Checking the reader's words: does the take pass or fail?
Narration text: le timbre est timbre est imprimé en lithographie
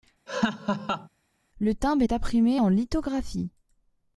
fail